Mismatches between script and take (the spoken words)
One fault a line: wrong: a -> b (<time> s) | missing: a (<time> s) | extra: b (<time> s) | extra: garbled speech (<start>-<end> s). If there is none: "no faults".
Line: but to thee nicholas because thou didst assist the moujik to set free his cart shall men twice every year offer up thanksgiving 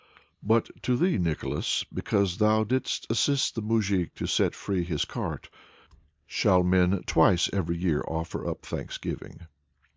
no faults